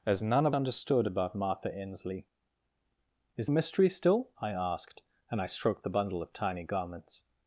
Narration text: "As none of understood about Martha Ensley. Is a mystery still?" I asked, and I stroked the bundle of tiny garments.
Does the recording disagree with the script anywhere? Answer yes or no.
no